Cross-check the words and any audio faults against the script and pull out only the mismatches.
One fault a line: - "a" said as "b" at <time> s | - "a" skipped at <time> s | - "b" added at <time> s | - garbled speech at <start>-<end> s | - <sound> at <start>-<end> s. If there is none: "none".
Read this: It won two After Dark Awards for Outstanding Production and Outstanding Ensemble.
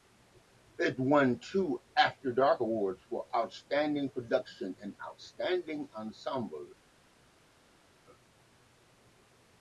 none